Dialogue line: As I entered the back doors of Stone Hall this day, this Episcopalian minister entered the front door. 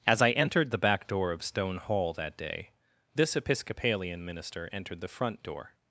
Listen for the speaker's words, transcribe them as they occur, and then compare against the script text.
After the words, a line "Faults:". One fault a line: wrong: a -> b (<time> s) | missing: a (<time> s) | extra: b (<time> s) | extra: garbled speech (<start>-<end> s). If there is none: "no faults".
As I entered the back door of Stone Hall that day, this Episcopalian minister entered the front door.
Faults:
wrong: doors -> door (1.1 s)
wrong: this -> that (2.1 s)